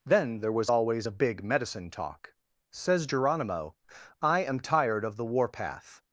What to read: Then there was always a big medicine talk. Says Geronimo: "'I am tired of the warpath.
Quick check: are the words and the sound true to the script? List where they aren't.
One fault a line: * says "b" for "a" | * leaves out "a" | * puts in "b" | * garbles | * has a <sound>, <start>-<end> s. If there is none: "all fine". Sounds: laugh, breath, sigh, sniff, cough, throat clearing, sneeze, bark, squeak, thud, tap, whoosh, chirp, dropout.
all fine